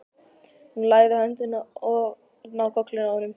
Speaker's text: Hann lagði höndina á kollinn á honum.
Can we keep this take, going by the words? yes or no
no